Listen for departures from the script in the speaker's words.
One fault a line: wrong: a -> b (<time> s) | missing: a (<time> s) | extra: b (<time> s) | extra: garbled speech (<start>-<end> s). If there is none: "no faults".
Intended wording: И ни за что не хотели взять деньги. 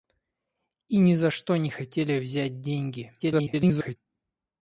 extra: garbled speech (3.2-4.0 s)